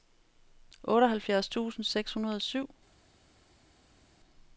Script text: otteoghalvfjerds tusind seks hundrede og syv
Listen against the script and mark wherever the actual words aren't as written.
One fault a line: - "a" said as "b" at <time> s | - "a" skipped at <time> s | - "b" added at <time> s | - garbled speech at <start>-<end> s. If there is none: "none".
none